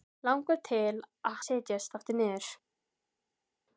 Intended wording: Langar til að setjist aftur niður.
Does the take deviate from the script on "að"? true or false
false